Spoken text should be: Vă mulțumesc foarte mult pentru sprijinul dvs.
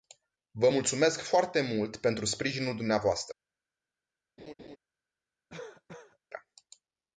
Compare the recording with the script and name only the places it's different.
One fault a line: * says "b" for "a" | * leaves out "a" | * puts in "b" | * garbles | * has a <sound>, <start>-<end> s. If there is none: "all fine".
* has a laugh, 4.4-4.8 s
* has a cough, 5.5-6.2 s